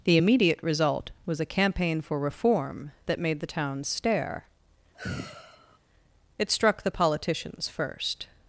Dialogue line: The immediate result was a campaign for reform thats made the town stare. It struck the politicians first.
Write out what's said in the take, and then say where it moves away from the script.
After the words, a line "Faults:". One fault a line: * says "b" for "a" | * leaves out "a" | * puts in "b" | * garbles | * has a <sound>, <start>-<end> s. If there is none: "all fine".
The immediate result was a campaign for reform that made the town stare. It struck the politicians first.
Faults:
* says "that" for "thats"
* has a sigh, 4.9-5.8 s